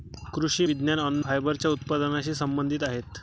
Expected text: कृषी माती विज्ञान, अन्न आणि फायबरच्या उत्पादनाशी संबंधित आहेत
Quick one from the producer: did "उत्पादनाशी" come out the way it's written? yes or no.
yes